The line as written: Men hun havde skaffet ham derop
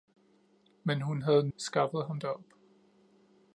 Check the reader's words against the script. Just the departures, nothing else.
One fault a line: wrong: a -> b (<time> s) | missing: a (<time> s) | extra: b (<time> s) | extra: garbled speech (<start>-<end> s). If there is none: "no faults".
no faults